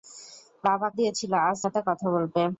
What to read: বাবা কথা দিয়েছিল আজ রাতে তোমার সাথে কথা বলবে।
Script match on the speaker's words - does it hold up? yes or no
no